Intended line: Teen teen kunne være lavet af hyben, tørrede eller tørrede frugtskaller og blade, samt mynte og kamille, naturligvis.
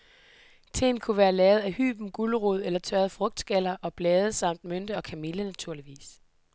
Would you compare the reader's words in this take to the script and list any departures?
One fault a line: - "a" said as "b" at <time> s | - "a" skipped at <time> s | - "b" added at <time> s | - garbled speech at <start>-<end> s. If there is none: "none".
- "teen" skipped at 1.0 s
- "tørrede" said as "gulerod" at 2.1 s